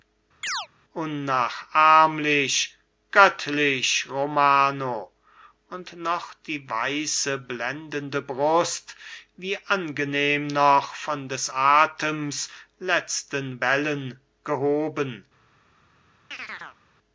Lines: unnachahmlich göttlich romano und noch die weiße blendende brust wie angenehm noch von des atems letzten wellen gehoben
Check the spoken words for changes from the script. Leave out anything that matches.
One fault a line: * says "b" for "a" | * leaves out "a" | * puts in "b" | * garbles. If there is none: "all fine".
all fine